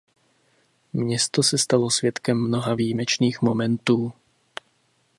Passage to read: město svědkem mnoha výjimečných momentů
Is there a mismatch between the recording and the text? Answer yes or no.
yes